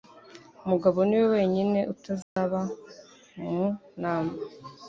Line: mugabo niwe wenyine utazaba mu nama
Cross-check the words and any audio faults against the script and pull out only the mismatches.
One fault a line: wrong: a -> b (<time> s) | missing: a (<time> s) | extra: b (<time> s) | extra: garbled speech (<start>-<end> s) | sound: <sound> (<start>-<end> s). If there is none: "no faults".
sound: dropout (2.2-2.4 s)